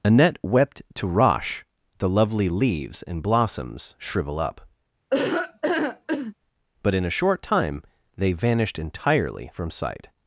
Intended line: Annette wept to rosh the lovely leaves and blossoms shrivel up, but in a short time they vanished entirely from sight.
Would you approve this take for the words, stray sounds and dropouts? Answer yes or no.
no